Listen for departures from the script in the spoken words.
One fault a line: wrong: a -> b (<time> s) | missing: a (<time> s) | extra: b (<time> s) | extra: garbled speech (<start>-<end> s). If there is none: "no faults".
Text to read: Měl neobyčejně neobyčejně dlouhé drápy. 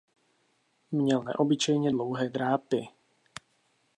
missing: neobyčejně (1.9 s)